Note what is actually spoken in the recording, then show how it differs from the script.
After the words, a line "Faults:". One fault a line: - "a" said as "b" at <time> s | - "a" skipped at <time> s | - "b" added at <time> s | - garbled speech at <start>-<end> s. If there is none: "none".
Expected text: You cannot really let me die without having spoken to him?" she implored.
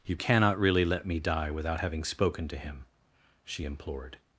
You cannot really let me die without having spoken to him?" she implored.
Faults:
none